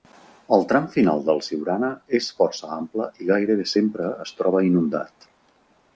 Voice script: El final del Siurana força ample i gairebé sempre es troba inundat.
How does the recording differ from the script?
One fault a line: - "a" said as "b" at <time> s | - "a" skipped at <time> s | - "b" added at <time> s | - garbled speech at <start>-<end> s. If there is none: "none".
- "tram" added at 0.7 s
- "és" added at 2.2 s